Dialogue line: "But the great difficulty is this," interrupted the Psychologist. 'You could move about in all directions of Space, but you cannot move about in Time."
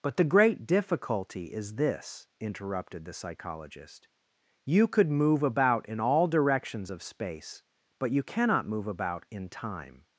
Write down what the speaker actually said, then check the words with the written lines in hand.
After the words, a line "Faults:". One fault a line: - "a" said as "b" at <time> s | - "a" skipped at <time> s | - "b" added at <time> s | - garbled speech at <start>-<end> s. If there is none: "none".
"But the great difficulty is this," interrupted the Psychologist. 'You could move about in all directions of Space, but you cannot move about in Time."
Faults:
none